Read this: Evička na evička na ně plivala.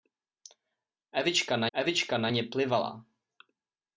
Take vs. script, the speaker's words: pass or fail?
pass